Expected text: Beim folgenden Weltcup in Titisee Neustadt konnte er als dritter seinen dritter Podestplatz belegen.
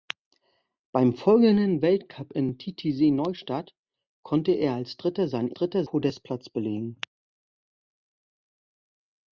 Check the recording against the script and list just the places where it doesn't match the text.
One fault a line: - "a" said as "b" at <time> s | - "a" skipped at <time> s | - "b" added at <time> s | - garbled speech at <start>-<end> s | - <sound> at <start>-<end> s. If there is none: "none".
none